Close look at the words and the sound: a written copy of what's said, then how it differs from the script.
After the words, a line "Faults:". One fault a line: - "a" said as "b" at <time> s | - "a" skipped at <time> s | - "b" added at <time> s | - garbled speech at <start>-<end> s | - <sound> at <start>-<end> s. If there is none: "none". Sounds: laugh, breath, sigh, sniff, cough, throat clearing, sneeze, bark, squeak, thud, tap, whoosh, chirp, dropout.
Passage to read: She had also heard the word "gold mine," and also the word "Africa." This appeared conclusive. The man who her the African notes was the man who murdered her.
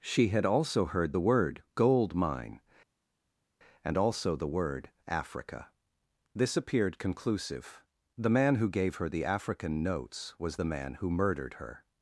She had also heard the word "gold mine," and also the word "Africa." This appeared conclusive. The man who gave her the African notes was the man who murdered her.
Faults:
- "gave" added at 8.7 s